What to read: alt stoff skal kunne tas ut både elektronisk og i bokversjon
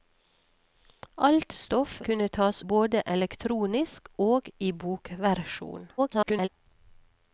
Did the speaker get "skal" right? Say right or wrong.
wrong